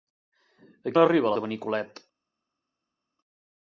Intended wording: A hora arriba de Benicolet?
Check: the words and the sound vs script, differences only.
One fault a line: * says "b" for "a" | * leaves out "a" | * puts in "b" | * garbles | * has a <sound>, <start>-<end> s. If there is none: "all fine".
all fine